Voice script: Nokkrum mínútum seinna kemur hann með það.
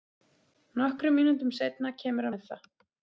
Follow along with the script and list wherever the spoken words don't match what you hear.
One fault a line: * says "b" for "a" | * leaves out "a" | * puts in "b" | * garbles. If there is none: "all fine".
* leaves out "hann"